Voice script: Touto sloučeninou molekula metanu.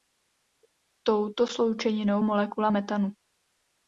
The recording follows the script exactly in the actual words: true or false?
true